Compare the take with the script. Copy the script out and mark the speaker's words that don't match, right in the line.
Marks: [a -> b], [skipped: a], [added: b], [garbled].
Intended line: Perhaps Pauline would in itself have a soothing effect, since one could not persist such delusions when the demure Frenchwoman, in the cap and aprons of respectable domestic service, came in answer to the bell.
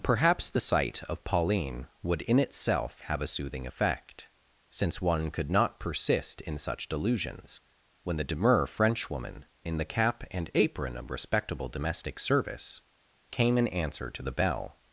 Perhaps [added: the sight of] Pauline would in itself have a soothing effect, since one could not persist [added: in] such delusions when the demure Frenchwoman, in the cap and [aprons -> apron] of respectable domestic service, came in answer to the bell.